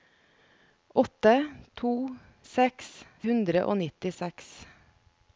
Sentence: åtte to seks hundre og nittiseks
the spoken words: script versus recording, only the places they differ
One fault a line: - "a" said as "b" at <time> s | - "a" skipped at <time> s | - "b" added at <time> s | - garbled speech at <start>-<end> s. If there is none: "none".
none